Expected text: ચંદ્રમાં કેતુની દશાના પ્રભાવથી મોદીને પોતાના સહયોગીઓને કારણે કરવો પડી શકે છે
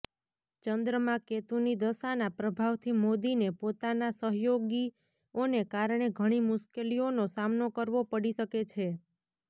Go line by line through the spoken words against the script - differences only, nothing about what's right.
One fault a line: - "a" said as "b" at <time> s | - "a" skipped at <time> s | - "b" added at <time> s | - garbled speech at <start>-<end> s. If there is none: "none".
- "ઘણી મુશ્કેલીઓનો સામનો" added at 6.2 s